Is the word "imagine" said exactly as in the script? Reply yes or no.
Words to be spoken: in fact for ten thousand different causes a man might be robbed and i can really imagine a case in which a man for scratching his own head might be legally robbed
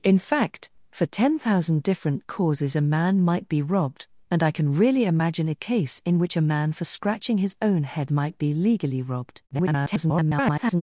yes